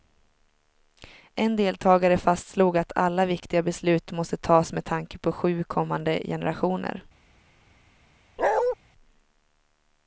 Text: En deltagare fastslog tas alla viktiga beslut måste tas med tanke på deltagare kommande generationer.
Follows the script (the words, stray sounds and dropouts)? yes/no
no